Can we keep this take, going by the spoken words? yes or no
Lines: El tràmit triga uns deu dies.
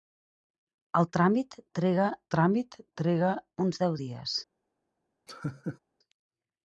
no